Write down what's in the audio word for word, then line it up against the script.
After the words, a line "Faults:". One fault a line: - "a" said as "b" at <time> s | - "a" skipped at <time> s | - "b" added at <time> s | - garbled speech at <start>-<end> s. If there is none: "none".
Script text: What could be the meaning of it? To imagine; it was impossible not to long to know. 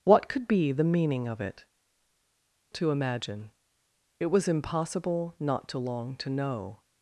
What could be the meaning of it? To imagine; it was impossible not to long to know.
Faults:
none